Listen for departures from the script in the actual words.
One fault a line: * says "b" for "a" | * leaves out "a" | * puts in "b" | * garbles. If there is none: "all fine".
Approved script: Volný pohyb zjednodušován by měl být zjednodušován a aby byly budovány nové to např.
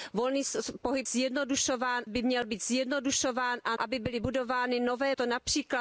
all fine